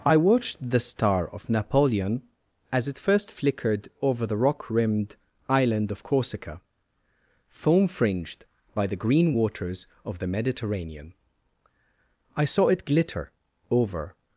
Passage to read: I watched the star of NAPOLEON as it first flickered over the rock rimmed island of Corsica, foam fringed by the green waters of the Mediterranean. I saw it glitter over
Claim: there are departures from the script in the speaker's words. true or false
false